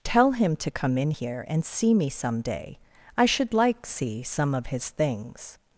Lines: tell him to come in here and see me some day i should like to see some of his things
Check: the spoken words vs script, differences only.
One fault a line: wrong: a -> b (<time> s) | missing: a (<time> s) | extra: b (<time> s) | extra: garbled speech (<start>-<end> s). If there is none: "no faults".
missing: to (3.8 s)